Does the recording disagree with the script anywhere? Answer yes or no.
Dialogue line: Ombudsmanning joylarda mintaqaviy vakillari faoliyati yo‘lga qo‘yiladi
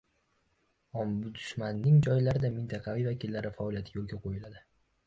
no